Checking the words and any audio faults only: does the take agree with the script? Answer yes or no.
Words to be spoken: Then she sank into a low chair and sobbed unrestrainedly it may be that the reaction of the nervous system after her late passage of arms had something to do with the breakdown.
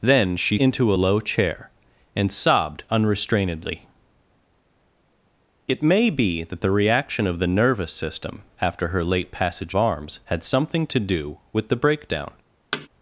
no